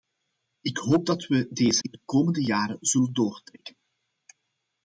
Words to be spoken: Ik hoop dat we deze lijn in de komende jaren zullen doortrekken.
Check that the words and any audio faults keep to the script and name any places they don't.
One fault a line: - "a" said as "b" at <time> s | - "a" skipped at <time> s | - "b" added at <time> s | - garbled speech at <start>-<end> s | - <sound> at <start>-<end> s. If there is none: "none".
- "lijn" skipped at 1.8 s